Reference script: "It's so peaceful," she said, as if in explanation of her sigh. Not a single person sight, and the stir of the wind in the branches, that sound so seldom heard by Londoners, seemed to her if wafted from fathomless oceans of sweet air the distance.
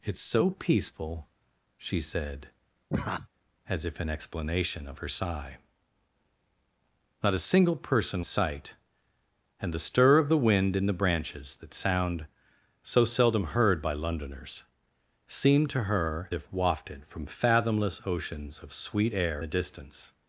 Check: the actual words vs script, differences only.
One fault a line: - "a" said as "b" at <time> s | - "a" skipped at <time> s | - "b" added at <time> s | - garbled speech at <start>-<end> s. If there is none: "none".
none